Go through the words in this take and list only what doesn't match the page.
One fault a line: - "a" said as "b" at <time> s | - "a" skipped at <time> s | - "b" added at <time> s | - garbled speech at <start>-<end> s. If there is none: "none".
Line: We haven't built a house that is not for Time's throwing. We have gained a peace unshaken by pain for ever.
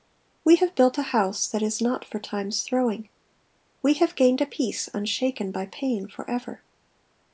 - "haven't" said as "have" at 0.5 s